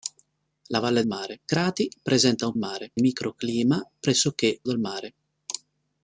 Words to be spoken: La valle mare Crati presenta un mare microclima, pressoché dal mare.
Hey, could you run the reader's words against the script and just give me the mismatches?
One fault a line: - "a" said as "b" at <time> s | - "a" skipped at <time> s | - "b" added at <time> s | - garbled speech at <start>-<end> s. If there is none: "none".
none